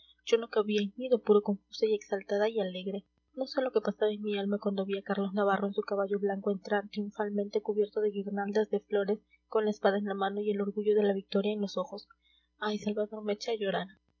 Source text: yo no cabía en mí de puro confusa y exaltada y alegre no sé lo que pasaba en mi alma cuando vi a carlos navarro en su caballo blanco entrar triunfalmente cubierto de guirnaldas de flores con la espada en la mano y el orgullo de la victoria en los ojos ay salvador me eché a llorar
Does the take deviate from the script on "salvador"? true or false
false